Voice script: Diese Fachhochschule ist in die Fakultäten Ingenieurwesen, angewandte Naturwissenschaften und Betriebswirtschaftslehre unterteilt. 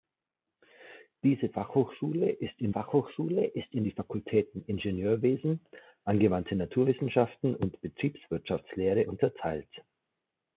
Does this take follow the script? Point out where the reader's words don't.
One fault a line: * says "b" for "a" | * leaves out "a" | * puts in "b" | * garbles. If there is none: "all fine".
* puts in "Fachhochschule ist in"